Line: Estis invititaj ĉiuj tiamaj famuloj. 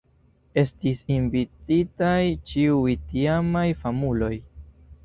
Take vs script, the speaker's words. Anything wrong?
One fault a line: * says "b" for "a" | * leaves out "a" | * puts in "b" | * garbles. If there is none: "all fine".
all fine